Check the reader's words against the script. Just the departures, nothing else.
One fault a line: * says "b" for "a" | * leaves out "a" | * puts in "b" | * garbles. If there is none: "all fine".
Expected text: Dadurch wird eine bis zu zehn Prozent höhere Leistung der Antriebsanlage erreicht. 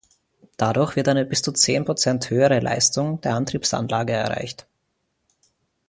all fine